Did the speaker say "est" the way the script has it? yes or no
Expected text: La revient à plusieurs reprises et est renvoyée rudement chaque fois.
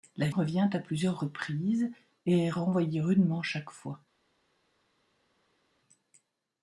yes